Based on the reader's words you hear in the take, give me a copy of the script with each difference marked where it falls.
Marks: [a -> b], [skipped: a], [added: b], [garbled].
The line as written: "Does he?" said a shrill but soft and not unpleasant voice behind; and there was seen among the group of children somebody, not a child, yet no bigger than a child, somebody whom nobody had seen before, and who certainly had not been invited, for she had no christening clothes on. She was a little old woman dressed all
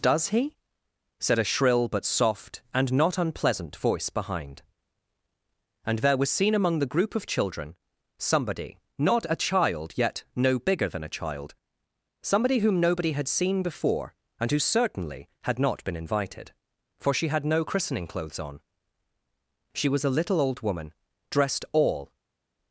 "Does he?" said a shrill but soft and not unpleasant voice behind; and there was seen among the group of children somebody, not a child, yet no bigger than a child, somebody whom nobody had seen before, and who certainly had not been invited, for she had no christening clothes on. She was a little old woman dressed all